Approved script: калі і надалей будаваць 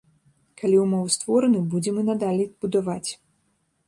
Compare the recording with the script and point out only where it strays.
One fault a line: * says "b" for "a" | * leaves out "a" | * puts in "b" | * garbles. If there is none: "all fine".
* puts in "ўмовы створаны будзем"